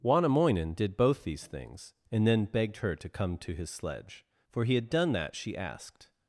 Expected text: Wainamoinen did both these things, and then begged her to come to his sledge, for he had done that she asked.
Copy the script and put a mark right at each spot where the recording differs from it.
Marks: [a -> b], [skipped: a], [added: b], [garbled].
Wainamoinen did both these things, and then begged her to come to his sledge, for he had done that she asked.